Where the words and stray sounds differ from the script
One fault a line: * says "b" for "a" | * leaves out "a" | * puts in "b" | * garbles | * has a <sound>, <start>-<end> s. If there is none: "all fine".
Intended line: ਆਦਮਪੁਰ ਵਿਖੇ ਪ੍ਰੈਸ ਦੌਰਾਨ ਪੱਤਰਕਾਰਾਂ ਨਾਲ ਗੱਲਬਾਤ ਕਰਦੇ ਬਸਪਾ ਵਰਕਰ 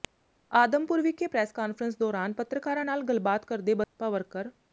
* puts in "ਕਾਨਫਰੰਸ"
* has a dropout, 3.8-4.0 s